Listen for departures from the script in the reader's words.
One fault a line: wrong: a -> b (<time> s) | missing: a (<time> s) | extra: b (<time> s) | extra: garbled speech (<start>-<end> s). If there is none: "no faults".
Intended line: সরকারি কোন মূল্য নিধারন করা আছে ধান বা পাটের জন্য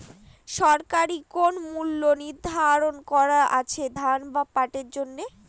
no faults